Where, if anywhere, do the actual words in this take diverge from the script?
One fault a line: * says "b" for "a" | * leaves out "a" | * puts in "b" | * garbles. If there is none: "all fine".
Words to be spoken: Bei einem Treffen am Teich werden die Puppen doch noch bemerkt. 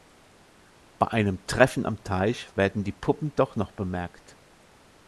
all fine